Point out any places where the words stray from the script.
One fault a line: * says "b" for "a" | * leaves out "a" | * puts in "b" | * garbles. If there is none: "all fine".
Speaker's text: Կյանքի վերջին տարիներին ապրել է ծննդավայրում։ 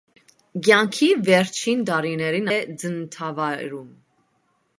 * leaves out "ապրել"